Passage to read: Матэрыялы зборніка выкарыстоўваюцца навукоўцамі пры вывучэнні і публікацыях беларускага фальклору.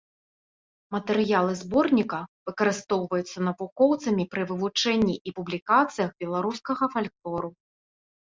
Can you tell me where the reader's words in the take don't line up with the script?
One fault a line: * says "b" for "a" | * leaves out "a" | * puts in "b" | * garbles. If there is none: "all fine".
all fine